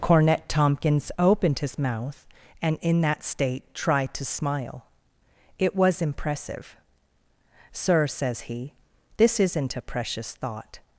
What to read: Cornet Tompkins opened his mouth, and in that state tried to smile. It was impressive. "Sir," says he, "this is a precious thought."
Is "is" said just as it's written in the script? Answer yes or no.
no